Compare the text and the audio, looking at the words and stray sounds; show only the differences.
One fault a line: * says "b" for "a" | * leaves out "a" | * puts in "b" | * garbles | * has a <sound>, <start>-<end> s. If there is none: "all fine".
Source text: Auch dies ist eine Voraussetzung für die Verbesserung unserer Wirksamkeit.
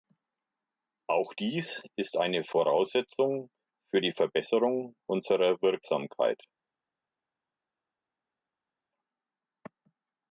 all fine